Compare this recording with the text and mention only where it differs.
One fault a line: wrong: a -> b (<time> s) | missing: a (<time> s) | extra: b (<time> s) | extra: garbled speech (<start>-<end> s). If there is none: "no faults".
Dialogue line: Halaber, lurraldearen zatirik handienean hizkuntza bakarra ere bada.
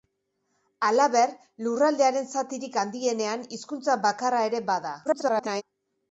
extra: garbled speech (5.0-5.6 s)